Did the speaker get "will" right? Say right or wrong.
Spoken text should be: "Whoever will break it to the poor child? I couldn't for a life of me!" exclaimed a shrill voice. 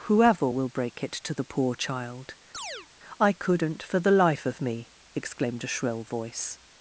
right